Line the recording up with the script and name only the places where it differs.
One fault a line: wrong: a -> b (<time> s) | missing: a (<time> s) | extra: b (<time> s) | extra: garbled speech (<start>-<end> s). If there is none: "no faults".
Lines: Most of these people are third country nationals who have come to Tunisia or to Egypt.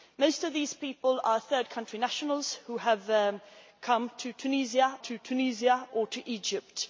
extra: to Tunisia (5.0 s)